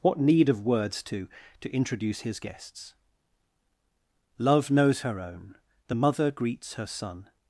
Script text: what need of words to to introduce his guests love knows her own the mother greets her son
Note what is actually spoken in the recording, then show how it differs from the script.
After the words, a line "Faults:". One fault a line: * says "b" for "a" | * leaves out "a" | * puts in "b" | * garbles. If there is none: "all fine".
what need of words to to introduce his guests love knows her own the mother greets her son
Faults:
all fine